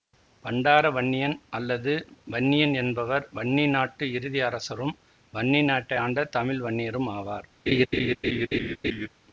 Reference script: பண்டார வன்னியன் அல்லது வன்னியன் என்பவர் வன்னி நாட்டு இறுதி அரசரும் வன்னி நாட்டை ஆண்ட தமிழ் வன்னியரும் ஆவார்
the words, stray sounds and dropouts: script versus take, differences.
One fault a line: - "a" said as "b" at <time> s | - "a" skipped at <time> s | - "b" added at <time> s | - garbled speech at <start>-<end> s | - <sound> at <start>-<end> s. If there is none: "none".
- laugh at 7.7-9.1 s